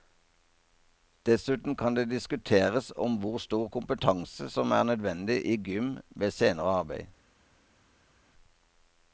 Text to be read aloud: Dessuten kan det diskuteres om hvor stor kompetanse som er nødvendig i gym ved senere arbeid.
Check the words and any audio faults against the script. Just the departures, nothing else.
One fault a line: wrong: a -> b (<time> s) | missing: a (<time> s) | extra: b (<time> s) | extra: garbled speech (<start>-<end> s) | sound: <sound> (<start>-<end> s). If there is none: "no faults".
no faults